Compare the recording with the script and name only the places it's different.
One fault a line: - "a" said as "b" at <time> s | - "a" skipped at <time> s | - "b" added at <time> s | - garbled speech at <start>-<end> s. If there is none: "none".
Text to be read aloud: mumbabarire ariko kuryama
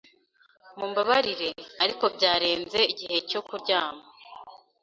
- "byarenze igihe cyo" added at 2.1 s